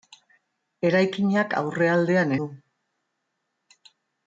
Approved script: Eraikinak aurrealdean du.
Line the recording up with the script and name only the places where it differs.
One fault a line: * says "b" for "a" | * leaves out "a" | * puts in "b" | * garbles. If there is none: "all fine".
all fine